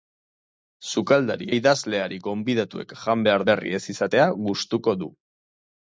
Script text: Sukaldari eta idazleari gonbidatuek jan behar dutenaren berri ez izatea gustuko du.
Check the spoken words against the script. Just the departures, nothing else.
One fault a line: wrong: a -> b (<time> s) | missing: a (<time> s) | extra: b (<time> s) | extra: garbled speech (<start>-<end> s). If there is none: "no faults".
missing: eta (1.5 s)
missing: dutenaren (3.4 s)